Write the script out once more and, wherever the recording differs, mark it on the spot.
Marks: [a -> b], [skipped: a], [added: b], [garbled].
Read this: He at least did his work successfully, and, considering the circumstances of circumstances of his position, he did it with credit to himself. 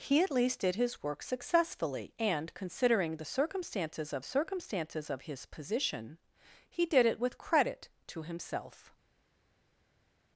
He at least did his work successfully, and, considering the circumstances of circumstances of his position, he did it with credit to himself.